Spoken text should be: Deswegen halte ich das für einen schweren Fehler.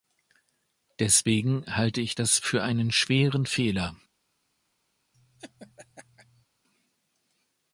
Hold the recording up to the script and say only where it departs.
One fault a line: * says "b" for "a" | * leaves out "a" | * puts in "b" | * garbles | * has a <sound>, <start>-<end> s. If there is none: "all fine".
* has a laugh, 5.1-6.5 s